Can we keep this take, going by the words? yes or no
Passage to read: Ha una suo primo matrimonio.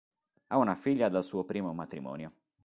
no